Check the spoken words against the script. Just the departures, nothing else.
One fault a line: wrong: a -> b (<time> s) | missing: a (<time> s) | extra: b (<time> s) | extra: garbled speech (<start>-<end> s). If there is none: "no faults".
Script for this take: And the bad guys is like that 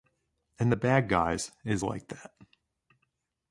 no faults